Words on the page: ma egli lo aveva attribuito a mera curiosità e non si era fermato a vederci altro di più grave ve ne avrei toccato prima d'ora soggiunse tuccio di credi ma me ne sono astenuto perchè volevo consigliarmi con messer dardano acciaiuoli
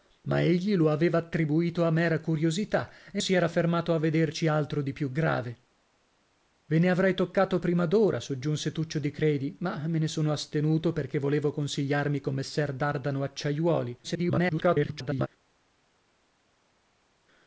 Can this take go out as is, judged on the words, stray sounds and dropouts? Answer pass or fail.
fail